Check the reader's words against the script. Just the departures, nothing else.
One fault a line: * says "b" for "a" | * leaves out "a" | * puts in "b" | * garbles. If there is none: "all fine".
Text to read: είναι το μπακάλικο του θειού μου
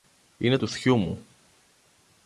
* leaves out "το μπακάλικο"